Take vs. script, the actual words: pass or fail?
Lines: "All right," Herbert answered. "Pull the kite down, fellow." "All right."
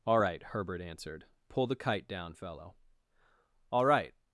pass